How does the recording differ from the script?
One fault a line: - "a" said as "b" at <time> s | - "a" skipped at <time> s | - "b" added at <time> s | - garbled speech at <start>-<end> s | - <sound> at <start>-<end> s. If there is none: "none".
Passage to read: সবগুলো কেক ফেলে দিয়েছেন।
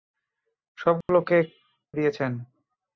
- dropout at 1.0-1.1 s
- "ফেলে" skipped at 1.5 s